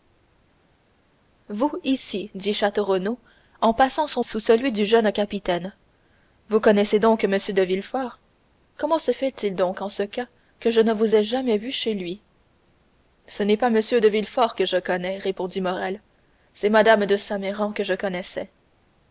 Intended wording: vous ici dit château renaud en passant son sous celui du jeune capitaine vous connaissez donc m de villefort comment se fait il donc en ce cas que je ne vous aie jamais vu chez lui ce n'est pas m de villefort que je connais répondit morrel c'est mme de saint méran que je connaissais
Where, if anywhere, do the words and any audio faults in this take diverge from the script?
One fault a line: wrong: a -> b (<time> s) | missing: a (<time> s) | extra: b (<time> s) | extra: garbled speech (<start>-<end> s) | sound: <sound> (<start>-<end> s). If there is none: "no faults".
no faults